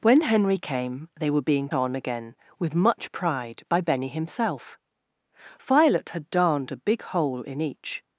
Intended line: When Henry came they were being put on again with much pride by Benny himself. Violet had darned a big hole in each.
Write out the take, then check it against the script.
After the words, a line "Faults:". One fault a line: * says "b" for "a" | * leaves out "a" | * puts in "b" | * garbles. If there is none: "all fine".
When Henry came they were being on again with much pride by Benny himself. Violet had darned a big hole in each.
Faults:
* leaves out "put"